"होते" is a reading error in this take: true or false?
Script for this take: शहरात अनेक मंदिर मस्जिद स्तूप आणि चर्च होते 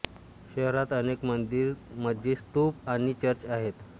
true